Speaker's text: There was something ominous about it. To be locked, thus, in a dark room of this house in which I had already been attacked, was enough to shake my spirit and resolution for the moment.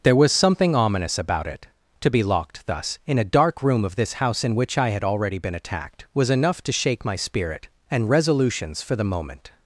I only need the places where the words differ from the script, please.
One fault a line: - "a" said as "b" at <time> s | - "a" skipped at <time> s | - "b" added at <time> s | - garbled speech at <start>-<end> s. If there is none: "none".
- "resolution" said as "resolutions" at 8.1 s